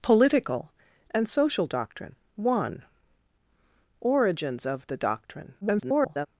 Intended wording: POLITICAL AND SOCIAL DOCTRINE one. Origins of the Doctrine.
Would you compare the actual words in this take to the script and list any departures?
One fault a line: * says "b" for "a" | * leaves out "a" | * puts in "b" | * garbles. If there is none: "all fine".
* garbles